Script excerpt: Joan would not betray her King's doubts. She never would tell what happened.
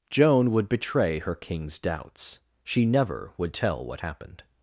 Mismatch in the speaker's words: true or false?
true